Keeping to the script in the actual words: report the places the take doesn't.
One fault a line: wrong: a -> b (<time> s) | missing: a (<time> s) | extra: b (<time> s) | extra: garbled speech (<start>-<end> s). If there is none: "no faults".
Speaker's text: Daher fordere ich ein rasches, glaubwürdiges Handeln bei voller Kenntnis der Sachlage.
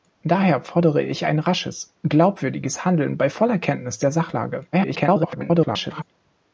extra: garbled speech (4.7-6.0 s)